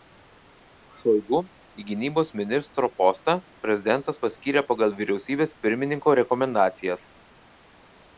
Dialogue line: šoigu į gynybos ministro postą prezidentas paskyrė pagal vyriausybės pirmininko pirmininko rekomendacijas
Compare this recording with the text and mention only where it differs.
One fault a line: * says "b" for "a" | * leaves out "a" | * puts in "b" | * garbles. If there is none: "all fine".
* leaves out "pirmininko"